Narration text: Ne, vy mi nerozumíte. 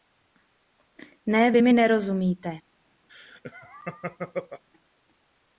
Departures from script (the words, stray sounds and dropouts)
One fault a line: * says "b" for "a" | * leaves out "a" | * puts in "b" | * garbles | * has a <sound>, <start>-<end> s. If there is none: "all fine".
* has a laugh, 3.1-4.6 s